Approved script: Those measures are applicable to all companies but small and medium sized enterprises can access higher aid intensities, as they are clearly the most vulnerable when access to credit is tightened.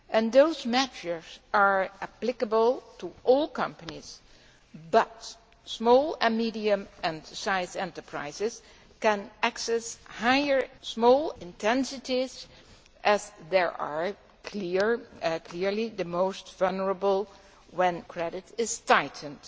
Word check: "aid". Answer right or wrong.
wrong